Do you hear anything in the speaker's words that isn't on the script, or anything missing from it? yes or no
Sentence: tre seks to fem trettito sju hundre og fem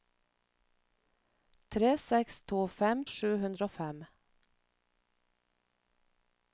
yes